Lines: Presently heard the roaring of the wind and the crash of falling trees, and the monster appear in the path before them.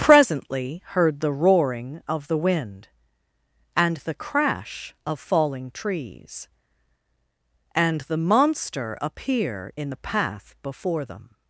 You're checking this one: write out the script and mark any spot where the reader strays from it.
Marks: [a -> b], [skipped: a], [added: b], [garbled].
Presently heard the roaring of the wind and the crash of falling trees, and the monster appear in the path before them.